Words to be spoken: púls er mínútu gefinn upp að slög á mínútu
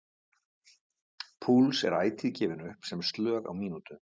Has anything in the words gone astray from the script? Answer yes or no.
yes